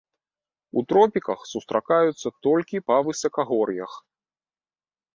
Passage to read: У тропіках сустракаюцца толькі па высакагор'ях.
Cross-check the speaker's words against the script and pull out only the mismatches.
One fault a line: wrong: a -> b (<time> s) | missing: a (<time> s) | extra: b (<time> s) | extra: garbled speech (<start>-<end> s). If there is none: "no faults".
no faults